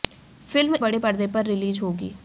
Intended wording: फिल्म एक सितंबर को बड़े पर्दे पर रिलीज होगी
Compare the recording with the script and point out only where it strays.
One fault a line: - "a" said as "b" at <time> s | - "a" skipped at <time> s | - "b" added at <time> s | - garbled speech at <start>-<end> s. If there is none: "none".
- "एक सितंबर को" skipped at 0.8 s